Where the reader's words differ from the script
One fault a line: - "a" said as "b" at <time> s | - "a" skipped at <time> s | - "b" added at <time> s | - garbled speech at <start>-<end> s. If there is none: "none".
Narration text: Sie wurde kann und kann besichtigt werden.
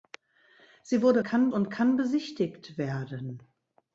none